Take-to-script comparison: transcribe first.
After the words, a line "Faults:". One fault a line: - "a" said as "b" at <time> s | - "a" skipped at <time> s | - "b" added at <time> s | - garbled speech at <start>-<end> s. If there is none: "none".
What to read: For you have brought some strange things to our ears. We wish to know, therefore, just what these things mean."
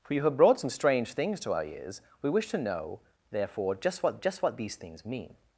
For you have brought some strange things to our ears. We wish to know, therefore, just what just what these things mean."
Faults:
- "just what" added at 4.2 s